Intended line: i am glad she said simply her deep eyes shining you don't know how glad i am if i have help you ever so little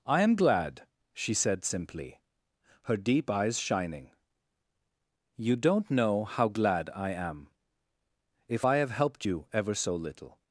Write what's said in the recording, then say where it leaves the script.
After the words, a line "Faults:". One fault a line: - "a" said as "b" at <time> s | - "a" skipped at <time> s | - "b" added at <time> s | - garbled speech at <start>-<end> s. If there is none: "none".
i am glad she said simply her deep eyes shining you don't know how glad i am if i have helped you ever so little
Faults:
- "help" said as "helped" at 8.9 s